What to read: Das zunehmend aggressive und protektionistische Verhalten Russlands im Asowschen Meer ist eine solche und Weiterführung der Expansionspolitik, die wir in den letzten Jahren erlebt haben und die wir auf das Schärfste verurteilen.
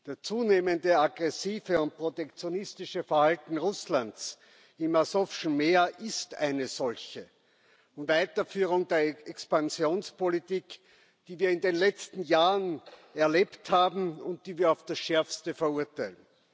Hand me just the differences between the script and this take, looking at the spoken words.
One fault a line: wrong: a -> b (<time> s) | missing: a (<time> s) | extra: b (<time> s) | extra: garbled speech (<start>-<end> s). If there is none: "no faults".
no faults